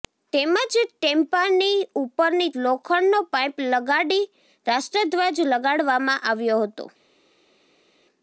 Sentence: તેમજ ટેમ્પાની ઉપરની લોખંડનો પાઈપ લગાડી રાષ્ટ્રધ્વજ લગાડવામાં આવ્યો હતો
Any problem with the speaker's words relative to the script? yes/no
no